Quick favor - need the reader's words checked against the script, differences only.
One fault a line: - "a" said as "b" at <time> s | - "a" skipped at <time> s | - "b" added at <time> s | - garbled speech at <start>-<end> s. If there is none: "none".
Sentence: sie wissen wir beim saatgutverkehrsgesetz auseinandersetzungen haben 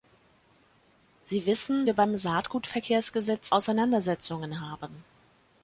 none